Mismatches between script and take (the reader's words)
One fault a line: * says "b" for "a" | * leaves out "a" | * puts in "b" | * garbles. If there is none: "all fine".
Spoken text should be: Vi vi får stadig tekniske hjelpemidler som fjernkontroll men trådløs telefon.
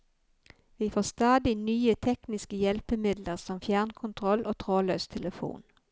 * leaves out "vi"
* puts in "nye"
* says "og" for "men"